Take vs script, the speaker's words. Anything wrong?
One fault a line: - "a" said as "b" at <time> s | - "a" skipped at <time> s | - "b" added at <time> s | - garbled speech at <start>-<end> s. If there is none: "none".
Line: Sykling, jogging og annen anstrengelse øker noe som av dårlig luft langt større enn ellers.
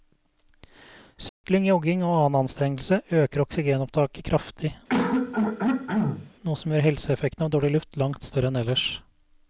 - "oksygenopptaket kraftig" added at 3.5 s
- "gjør helseeffekten" added at 6.7 s